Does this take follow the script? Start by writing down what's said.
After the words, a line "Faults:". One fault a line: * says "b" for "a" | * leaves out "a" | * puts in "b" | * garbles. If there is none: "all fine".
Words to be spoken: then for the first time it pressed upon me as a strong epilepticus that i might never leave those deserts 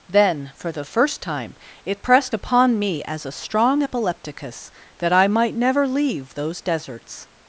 then for the first time it pressed upon me as a strong epilepticus that i might never leave those deserts
Faults:
all fine